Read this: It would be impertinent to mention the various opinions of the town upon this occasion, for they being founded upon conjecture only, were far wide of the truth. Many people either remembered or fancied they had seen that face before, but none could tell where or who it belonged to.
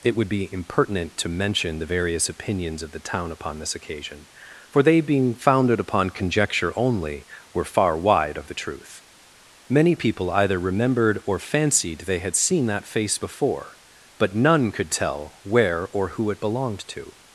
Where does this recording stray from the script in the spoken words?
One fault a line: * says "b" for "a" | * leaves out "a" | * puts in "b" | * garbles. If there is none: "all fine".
all fine